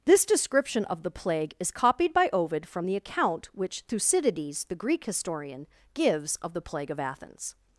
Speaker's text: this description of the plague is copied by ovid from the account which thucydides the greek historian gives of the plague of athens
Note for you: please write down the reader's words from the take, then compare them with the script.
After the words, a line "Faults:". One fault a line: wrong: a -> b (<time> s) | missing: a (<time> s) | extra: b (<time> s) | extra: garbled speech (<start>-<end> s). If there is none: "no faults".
this description of the plague is copied by ovid from the account which thucydides the greek historian gives of the plague of athens
Faults:
no faults